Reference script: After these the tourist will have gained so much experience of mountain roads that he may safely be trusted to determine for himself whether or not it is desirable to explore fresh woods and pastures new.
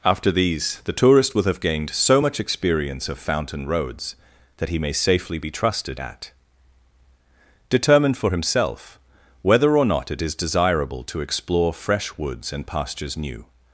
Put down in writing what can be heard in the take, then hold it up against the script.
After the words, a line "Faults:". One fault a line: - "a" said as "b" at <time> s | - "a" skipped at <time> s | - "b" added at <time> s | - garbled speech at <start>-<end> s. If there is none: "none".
After these the tourist will have gained so much experience of fountain roads that he may safely be trusted at determine for himself whether or not it is desirable to explore fresh woods and pastures new.
Faults:
- "mountain" said as "fountain" at 3.2 s
- "to" said as "at" at 6.0 s